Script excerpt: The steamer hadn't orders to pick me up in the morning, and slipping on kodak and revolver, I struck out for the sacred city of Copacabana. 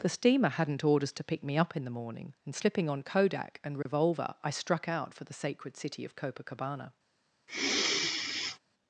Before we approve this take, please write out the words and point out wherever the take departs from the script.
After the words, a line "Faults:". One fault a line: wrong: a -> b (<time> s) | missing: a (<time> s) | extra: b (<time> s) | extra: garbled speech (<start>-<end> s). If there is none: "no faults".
The steamer hadn't orders to pick me up in the morning, and slipping on kodak and revolver, I struck out for the sacred city of Copacabana.
Faults:
no faults